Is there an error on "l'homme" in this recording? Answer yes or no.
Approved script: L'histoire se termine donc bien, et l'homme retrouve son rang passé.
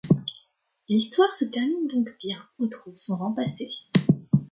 yes